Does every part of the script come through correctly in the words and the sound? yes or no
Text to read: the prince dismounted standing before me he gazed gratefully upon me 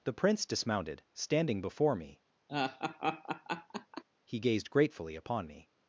no